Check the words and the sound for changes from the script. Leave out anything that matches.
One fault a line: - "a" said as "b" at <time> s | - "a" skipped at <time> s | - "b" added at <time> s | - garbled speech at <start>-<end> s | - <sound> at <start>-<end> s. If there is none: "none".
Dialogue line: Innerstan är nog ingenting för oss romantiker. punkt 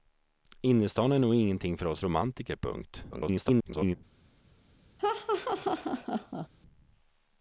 - garbled speech at 3.1-4.0 s
- laugh at 5.0-6.5 s